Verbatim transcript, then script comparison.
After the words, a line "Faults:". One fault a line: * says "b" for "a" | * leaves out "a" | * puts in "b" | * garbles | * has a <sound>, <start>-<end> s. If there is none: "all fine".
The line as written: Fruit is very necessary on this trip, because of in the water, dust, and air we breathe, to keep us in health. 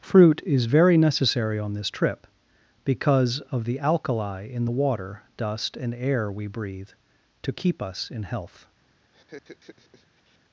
Fruit is very necessary on this trip, because of the alkali in the water, dust, and air we breathe, to keep us in health.
Faults:
* puts in "the alkali"
* has a laugh, 9.1-10.4 s